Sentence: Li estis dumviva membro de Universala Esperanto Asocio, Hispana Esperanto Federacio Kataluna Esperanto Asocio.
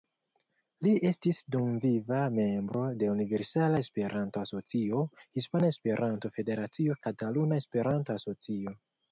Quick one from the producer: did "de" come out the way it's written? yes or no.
yes